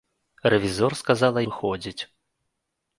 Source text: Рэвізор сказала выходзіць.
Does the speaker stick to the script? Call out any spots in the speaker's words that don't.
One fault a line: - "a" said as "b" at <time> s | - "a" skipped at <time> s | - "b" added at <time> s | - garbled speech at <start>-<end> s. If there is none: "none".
none